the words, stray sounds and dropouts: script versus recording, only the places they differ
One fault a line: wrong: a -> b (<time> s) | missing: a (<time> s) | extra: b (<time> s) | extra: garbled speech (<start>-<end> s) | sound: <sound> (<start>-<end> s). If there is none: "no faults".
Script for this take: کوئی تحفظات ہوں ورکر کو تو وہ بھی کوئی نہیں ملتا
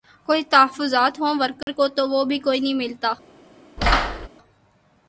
sound: dropout (1.6-1.7 s)
sound: thud (3.8-4.3 s)